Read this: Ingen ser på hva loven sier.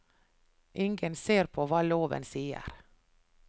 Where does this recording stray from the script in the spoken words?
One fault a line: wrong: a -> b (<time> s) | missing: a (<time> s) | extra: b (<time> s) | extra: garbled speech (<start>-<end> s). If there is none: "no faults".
no faults